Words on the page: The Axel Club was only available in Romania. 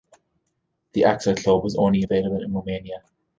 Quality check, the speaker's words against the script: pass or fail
pass